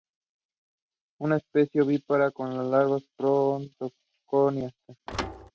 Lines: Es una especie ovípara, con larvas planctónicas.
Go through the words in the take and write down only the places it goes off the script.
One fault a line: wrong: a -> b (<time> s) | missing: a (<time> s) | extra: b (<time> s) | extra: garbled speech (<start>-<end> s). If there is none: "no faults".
no faults